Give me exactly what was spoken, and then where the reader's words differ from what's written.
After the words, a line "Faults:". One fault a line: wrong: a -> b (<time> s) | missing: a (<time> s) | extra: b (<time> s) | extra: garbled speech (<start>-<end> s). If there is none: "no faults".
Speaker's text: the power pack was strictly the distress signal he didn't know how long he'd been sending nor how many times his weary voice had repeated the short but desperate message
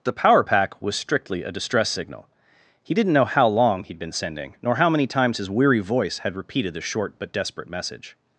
the power pack was strictly a distress signal he didn't know how long he'd been sending nor how many times his weary voice had repeated the short but desperate message
Faults:
wrong: the -> a (1.4 s)